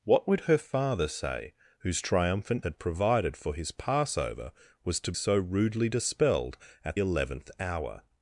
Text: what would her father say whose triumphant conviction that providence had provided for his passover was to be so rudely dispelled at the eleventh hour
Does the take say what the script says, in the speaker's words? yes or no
no